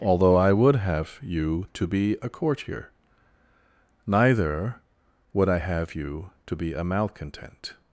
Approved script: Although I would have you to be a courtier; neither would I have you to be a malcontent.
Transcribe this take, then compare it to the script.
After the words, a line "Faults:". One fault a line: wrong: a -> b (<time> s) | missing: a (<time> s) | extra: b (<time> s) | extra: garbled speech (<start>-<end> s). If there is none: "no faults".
Although I would have you to be a courtier; neither would I have you to be a malcontent.
Faults:
no faults